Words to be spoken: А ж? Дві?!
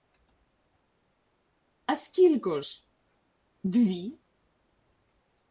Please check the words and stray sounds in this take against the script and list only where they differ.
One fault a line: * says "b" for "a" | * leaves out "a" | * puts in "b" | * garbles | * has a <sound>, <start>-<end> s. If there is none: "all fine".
* puts in "скілько"